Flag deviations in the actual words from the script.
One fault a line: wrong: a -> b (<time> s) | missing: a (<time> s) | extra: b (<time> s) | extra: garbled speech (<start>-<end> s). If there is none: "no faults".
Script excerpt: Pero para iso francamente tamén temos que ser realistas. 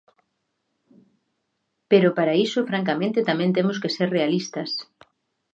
no faults